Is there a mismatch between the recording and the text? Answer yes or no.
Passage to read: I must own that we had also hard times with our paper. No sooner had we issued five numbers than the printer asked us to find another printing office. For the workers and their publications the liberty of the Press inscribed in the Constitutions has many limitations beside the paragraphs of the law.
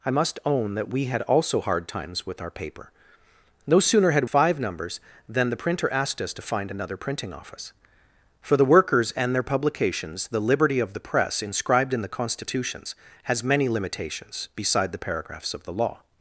yes